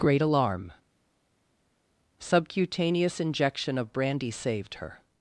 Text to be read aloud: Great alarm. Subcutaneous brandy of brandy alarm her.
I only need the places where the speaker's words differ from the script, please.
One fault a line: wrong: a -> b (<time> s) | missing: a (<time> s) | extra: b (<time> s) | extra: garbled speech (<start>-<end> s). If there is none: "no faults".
wrong: brandy -> injection (3.2 s)
wrong: alarm -> saved (4.3 s)